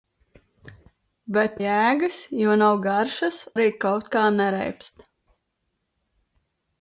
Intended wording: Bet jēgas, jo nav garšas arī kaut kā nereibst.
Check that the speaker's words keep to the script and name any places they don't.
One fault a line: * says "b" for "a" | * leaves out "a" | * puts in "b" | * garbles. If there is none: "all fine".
all fine